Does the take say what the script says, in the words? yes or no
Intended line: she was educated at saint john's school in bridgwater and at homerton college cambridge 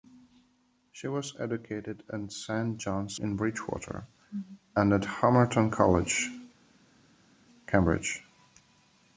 no